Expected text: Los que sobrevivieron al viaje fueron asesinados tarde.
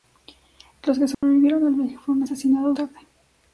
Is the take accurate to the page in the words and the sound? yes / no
no